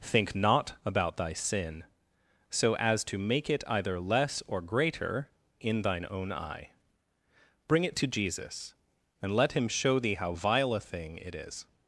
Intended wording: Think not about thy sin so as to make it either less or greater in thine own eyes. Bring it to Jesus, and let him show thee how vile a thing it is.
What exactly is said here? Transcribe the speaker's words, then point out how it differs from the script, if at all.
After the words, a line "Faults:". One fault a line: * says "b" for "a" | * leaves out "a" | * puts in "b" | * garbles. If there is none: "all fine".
Think not about thy sin so as to make it either less or greater in thine own eye. Bring it to Jesus, and let him show thee how vile a thing it is.
Faults:
* says "eye" for "eyes"